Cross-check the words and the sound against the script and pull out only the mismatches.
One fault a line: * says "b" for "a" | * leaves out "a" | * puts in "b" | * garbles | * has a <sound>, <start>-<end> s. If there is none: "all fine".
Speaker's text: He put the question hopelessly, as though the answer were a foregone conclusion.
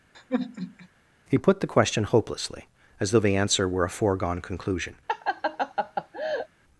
* has a sigh, 0.1-0.9 s
* has a laugh, 5.1-6.5 s